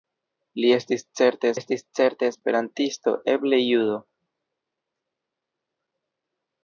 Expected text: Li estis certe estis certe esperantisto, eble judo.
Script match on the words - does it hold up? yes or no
yes